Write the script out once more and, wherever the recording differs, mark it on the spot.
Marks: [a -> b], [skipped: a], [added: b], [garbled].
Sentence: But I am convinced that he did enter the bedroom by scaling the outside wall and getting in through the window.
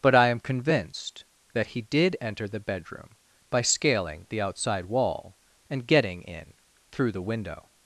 But I am convinced that he did enter the bedroom by scaling the outside wall and getting in through the window.